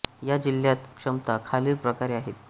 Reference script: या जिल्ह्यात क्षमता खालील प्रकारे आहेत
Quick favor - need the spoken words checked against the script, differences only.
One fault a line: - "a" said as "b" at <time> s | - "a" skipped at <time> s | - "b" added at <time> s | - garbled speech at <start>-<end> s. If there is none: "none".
none